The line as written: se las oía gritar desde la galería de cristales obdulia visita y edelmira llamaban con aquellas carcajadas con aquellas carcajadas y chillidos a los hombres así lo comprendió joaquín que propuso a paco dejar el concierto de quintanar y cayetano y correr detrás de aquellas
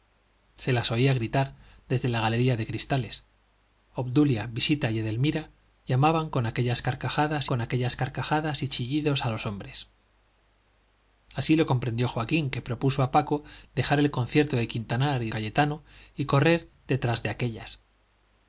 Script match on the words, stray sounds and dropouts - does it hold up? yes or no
yes